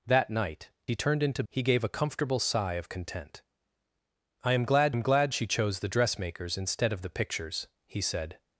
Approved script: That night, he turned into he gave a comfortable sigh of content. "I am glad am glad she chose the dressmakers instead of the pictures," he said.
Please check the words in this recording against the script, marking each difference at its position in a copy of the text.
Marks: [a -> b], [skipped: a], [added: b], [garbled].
That night, he turned into he gave a comfortable sigh of content. "I am glad am glad she chose the dressmakers instead of the pictures," he said.